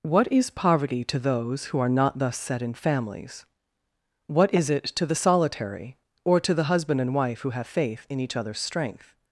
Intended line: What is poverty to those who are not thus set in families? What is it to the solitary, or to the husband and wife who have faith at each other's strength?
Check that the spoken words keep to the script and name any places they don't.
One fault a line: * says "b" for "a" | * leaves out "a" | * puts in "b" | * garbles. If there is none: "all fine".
* says "in" for "at"